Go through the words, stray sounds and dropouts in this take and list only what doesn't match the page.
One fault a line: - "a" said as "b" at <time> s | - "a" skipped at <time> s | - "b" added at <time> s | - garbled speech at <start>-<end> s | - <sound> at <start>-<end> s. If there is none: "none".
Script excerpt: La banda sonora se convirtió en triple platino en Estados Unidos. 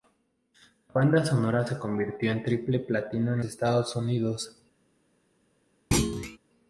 - thud at 5.9-6.4 s